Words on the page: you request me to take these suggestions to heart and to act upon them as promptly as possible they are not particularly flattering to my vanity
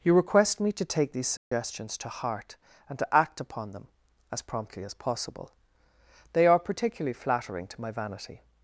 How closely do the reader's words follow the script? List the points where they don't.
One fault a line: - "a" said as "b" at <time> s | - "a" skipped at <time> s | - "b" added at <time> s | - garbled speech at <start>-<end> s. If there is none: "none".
- "not" skipped at 6.6 s